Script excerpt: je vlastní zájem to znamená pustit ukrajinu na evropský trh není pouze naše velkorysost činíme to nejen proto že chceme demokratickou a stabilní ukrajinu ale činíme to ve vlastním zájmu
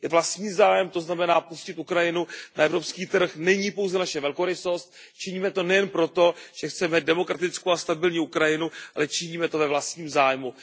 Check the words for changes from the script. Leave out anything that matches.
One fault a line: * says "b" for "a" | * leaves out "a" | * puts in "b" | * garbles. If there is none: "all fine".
all fine